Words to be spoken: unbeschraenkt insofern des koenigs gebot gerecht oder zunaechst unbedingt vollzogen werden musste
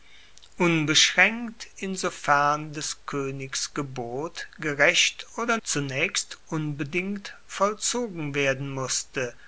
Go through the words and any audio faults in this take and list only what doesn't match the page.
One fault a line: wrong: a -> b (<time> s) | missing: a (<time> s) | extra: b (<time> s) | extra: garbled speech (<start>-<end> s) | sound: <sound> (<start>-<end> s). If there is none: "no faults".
no faults